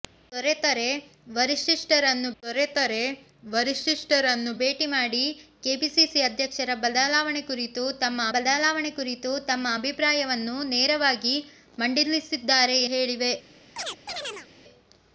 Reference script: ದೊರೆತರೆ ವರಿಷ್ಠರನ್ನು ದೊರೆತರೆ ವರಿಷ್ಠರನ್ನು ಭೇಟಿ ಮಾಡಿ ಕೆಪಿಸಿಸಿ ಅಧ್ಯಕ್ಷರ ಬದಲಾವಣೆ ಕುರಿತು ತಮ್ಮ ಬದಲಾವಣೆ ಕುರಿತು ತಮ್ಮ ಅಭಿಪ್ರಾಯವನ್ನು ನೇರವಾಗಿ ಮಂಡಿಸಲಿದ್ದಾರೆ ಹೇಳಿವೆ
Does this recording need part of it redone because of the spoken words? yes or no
no